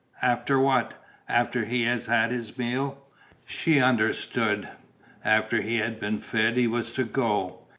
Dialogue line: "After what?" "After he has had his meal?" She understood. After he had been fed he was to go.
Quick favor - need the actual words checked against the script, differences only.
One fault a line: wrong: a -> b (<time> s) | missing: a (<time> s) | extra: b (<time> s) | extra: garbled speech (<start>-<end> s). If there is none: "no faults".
no faults